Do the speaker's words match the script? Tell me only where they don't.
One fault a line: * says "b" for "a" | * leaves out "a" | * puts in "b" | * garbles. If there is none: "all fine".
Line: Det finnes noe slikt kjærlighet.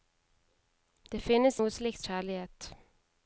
all fine